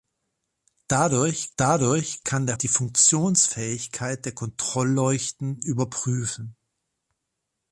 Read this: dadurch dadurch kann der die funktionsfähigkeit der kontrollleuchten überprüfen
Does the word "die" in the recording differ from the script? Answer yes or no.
no